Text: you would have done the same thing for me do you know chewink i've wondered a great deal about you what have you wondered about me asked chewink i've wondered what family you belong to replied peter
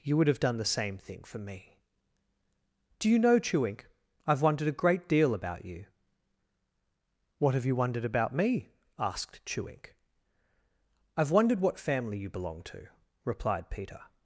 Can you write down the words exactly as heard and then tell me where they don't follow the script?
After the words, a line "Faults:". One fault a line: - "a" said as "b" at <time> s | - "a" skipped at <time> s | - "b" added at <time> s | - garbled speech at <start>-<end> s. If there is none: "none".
you would have done the same thing for me do you know chewink i've wondered a great deal about you what have you wondered about me asked chewink i've wondered what family you belong to replied peter
Faults:
none